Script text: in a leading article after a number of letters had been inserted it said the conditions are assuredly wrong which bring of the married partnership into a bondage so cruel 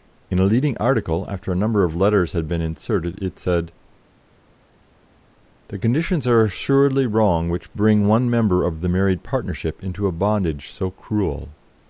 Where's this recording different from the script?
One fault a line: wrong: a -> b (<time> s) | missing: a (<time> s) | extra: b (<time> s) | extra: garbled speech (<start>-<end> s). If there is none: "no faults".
extra: one member (8.1 s)